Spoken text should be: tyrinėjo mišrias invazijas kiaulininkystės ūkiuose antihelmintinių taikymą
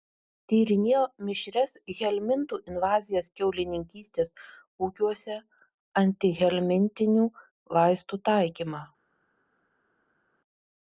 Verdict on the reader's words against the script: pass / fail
fail